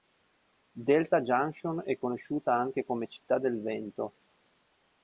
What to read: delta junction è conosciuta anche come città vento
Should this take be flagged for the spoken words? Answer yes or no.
yes